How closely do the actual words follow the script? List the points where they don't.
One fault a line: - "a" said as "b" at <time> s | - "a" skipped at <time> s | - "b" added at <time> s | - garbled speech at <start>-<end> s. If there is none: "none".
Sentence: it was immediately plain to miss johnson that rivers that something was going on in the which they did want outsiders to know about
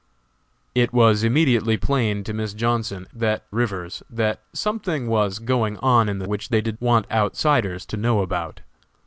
none